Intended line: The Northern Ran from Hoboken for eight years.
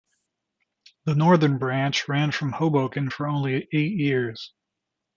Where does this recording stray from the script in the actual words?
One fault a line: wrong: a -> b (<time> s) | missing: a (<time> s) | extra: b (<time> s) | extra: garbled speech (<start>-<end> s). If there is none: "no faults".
extra: Branch (1.6 s)
extra: only (3.3 s)